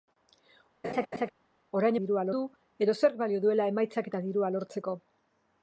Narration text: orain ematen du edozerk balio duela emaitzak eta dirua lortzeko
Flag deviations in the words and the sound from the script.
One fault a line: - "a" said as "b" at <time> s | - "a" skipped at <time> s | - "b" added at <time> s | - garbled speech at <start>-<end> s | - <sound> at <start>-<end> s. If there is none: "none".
- laugh at 0.8-1.3 s
- "ematen" said as "dirua" at 2.0 s